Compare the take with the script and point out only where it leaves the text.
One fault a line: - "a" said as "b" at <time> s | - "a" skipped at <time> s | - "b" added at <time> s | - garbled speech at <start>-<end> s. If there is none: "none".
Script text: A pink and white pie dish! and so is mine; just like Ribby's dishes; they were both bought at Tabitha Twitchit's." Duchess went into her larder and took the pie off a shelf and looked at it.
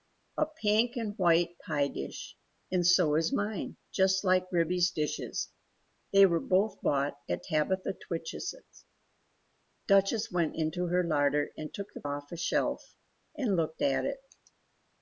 - "pie" skipped at 12.0 s